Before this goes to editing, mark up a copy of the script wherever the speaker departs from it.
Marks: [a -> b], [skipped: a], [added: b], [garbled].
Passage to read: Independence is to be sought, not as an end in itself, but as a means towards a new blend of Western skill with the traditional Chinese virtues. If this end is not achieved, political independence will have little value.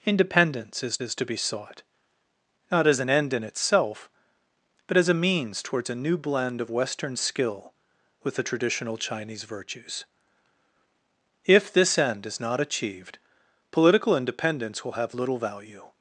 Independence is [added: is] to be sought, not as an end in itself, but as a means towards a new blend of Western skill with the traditional Chinese virtues. If this end is not achieved, political independence will have little value.